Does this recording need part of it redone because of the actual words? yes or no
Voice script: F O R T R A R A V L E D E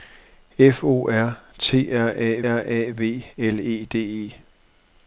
no